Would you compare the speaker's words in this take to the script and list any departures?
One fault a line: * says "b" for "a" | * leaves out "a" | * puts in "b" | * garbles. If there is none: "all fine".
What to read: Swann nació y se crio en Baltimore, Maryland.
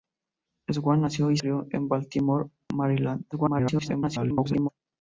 * leaves out "se"
* garbles